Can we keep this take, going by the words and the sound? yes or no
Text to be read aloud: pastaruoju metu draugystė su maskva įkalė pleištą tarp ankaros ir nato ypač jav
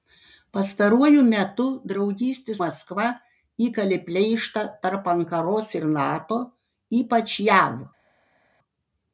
no